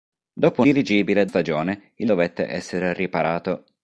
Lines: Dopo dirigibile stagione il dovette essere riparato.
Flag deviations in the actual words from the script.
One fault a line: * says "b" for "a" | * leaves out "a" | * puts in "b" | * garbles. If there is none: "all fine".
all fine